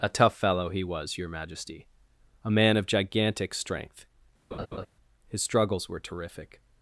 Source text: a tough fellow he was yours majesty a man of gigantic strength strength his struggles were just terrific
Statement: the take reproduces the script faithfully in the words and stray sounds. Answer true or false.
false